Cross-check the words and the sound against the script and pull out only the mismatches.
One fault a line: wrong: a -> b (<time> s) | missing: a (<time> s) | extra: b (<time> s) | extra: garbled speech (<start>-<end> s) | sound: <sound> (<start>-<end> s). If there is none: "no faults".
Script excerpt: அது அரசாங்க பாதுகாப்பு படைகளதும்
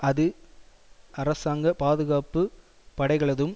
no faults